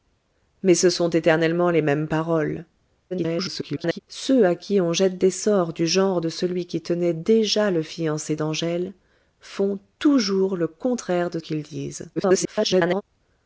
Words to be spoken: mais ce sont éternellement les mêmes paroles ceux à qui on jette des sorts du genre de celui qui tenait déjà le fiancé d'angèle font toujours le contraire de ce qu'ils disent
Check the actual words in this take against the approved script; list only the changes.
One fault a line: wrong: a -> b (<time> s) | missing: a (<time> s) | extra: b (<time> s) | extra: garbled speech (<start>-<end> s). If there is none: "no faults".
extra: garbled speech (3.1-4.0 s)
missing: ce (11.4 s)
extra: garbled speech (12.2-13.0 s)